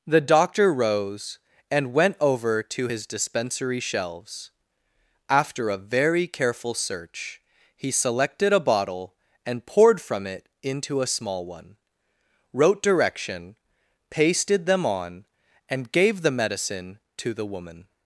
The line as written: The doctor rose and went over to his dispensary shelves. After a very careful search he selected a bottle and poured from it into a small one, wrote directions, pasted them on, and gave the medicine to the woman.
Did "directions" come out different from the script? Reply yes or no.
yes